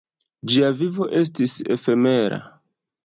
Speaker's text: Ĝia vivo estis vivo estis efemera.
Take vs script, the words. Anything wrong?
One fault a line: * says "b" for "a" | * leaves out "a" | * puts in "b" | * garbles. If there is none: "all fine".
* leaves out "vivo estis"